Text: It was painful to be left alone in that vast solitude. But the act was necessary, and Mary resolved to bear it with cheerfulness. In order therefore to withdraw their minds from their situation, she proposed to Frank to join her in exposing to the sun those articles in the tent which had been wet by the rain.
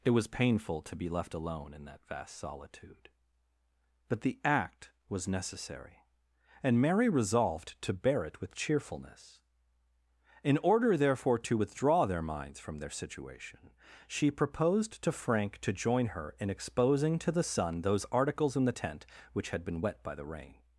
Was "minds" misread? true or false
false